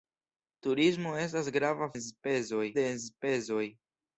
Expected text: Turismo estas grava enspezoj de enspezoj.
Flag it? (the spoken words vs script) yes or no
no